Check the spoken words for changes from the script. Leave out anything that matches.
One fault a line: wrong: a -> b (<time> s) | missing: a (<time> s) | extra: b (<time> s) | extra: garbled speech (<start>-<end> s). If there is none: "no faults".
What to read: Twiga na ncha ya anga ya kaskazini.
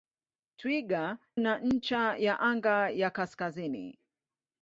no faults